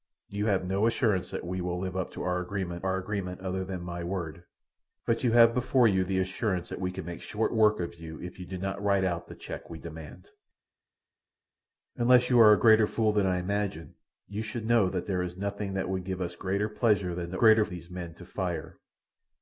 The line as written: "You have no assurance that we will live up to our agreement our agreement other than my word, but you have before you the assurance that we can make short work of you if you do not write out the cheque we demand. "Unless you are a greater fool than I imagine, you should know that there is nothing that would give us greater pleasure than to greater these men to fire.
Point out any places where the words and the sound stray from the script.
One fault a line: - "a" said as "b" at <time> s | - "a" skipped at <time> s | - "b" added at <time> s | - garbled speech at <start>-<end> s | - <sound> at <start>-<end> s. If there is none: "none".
none